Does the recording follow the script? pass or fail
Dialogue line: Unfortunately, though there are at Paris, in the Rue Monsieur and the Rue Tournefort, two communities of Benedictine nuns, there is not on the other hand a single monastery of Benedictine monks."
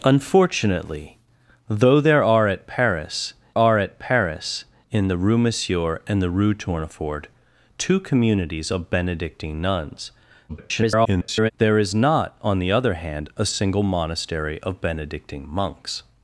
fail